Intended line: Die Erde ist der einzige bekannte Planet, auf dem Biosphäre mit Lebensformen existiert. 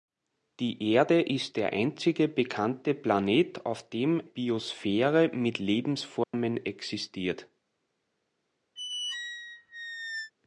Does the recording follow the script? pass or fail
pass